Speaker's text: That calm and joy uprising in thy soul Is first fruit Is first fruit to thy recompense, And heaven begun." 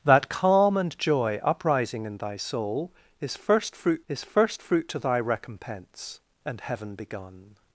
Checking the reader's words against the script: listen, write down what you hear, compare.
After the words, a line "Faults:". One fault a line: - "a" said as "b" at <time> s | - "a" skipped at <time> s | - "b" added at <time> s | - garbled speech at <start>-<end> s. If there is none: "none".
That calm and joy uprising in thy soul Is first fruit Is first fruit to thy recompense, And heaven begun."
Faults:
none